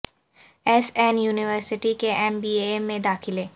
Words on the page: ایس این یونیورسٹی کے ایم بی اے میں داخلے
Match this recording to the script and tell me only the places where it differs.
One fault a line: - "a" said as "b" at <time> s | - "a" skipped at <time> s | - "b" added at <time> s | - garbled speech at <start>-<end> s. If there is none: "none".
none